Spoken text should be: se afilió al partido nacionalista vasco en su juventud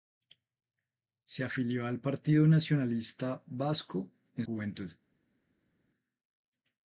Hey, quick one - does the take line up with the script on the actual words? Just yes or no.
no